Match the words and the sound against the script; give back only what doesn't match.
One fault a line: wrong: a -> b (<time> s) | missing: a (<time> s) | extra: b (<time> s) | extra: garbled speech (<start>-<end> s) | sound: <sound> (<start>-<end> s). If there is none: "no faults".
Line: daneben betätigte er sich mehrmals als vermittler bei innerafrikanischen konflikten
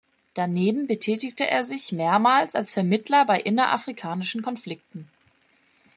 no faults